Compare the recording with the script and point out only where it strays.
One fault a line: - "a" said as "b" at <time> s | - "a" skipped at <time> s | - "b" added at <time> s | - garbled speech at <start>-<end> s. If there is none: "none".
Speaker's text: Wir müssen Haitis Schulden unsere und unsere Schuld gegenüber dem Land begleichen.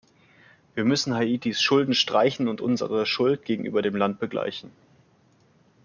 - "unsere" said as "streichen" at 1.9 s